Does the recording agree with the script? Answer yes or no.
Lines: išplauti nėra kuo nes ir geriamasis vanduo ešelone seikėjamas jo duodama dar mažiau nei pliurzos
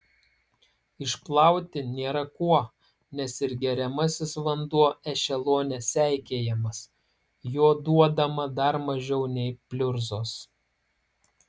yes